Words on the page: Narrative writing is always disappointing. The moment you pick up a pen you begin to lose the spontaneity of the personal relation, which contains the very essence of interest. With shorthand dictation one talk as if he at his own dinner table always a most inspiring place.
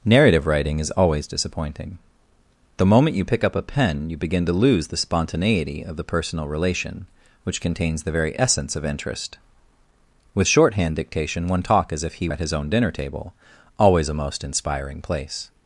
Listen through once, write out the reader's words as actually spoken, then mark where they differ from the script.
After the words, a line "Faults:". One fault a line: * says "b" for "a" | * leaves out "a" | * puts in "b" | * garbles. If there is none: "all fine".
Narrative writing is always disappointing. The moment you pick up a pen you begin to lose the spontaneity of the personal relation, which contains the very essence of interest. With shorthand dictation one talk as if he at his own dinner table always a most inspiring place.
Faults:
all fine